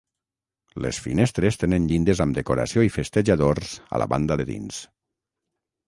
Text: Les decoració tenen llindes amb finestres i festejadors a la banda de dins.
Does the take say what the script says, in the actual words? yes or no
no